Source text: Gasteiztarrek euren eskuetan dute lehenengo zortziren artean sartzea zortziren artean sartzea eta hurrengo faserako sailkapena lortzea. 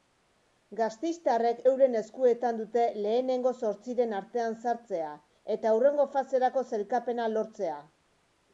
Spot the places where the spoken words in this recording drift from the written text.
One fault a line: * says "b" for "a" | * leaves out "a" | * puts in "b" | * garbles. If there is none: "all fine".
* leaves out "zortziren artean sartzea"